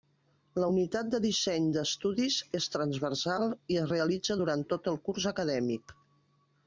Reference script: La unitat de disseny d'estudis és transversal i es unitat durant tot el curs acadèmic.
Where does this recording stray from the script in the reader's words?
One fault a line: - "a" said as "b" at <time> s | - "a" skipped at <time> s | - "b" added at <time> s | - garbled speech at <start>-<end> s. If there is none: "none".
- "unitat" said as "realitza" at 3.9 s